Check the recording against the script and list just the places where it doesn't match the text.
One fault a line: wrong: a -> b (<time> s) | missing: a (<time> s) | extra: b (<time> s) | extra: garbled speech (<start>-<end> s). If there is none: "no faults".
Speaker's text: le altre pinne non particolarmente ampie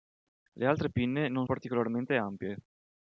no faults